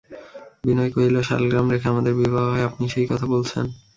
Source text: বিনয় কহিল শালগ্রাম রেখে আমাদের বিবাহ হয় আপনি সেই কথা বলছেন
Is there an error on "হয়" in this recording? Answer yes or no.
no